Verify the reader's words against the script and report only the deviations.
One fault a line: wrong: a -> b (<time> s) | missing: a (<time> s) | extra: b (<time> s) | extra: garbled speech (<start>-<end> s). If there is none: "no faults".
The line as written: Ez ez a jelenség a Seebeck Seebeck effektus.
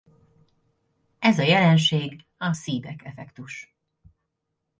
missing: ez (1.4 s)
missing: Seebeck (3.0 s)